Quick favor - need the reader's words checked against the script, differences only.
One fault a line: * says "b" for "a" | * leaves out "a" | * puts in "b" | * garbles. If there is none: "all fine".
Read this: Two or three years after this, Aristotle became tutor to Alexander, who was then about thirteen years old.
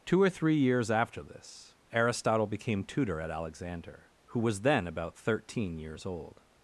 * says "at" for "to"